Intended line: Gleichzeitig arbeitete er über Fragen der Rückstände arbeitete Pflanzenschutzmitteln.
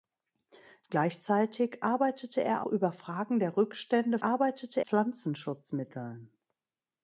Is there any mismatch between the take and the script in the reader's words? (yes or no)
no